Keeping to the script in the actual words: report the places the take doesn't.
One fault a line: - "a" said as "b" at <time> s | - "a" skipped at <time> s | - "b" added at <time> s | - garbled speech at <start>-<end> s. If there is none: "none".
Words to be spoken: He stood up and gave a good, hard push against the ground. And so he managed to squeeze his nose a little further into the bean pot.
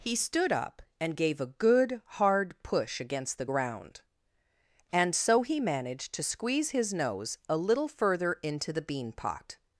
none